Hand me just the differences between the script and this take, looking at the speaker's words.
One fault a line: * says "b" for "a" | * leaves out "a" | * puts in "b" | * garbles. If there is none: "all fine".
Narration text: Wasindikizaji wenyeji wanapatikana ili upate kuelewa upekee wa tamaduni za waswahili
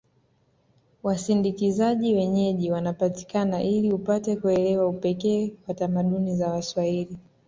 all fine